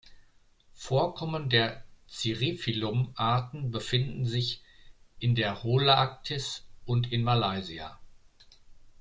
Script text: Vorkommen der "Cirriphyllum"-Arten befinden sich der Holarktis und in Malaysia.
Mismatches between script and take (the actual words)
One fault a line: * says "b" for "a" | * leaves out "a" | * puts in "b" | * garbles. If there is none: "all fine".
* puts in "in"